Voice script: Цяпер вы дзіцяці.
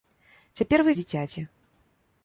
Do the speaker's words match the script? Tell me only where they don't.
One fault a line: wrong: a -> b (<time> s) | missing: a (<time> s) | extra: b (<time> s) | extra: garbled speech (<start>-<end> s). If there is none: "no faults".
no faults